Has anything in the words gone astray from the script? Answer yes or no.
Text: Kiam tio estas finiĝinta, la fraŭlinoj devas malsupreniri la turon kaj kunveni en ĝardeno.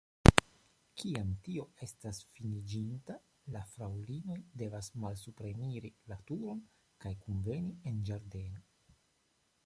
no